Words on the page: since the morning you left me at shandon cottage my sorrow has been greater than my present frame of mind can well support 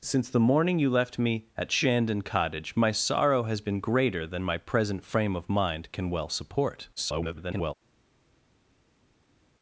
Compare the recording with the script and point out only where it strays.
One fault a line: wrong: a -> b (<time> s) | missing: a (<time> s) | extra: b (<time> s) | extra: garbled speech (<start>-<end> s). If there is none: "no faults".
extra: garbled speech (7.0-7.7 s)